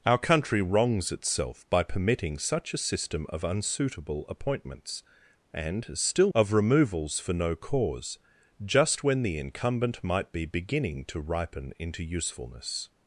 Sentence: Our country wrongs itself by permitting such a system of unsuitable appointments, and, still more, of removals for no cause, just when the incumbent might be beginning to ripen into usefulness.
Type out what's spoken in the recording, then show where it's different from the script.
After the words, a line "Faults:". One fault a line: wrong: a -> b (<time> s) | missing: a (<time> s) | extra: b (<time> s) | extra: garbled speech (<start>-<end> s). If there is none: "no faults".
Our country wrongs itself by permitting such a system of unsuitable appointments, and, still of removals for no cause, just when the incumbent might be beginning to ripen into usefulness.
Faults:
missing: more (6.3 s)